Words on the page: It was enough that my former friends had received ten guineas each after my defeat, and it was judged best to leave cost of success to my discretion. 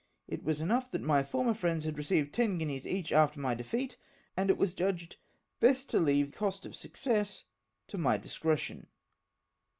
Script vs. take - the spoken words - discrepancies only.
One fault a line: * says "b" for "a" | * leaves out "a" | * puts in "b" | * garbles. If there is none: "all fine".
all fine